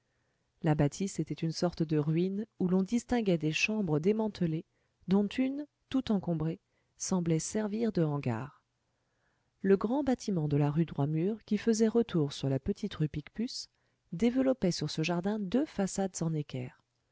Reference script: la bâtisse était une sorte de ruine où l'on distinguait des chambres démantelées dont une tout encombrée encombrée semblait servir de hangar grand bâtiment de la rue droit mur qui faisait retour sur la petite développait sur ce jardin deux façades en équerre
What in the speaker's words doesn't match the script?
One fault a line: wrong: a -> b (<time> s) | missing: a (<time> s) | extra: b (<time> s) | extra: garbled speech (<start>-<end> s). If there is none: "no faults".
missing: encombrée (6.6 s)
extra: le (9.6 s)
extra: rue picpus (12.9 s)